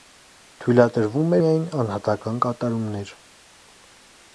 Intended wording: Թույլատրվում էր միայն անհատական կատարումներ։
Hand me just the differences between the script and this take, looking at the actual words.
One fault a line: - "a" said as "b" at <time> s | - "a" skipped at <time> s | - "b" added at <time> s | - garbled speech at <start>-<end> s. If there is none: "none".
- "էր" skipped at 1.4 s